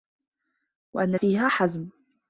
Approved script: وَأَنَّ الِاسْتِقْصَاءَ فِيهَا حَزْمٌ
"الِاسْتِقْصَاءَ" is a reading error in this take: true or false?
true